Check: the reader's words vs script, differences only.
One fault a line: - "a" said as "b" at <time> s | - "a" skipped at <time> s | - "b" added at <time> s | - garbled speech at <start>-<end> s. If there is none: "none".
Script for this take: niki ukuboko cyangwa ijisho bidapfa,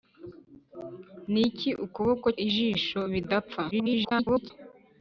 - "cyangwa" skipped at 2.3 s
- garbled speech at 3.7-4.5 s